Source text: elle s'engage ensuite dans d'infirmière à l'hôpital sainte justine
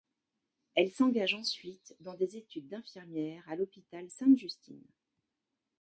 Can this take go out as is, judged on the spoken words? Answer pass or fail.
fail